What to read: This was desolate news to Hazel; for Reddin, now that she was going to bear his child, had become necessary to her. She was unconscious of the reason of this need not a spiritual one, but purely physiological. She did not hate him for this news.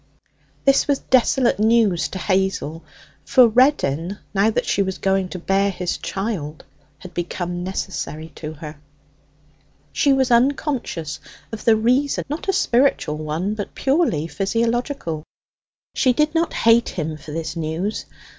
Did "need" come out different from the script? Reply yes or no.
yes